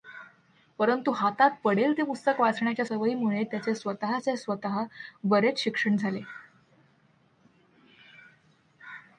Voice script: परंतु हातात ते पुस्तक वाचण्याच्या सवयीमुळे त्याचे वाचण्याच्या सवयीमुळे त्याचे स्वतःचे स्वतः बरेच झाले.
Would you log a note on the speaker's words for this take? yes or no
yes